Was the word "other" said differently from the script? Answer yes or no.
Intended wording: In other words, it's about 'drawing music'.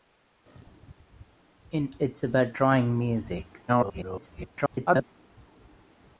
yes